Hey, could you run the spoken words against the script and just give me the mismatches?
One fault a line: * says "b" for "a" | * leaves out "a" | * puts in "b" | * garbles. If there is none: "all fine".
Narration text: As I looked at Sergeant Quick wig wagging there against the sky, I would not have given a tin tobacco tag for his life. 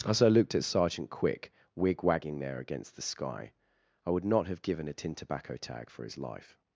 all fine